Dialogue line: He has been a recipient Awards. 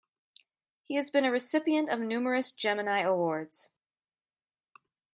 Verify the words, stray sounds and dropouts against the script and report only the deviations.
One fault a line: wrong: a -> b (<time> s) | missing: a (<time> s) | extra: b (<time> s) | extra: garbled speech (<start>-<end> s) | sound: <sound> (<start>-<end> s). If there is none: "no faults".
extra: of numerous Gemini (1.9 s)